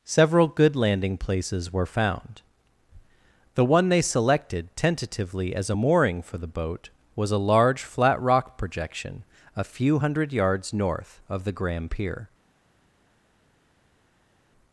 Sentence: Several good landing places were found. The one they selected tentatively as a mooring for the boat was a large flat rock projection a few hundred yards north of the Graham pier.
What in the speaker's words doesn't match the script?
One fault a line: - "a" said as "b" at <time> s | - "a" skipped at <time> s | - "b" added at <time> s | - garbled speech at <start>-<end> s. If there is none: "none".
none